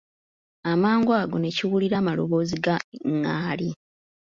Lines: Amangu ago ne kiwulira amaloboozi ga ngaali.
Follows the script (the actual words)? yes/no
yes